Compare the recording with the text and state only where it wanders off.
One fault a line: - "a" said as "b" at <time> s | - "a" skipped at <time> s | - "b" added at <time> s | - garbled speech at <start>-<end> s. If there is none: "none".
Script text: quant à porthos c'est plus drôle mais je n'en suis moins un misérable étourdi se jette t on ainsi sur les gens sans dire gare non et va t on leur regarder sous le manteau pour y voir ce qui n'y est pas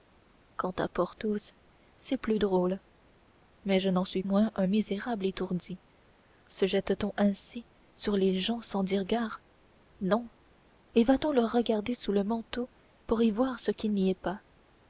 none